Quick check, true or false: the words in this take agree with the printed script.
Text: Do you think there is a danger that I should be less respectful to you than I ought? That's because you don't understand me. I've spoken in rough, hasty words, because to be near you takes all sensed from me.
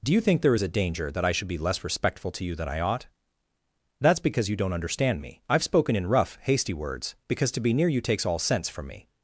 false